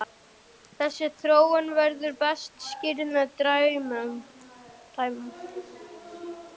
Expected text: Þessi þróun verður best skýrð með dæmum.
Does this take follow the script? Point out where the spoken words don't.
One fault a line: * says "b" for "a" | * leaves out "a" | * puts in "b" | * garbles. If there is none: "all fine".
all fine